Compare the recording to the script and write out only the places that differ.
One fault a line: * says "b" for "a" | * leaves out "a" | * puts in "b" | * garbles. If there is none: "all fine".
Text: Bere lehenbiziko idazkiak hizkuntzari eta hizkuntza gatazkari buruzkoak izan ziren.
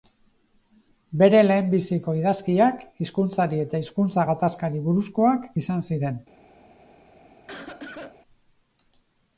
all fine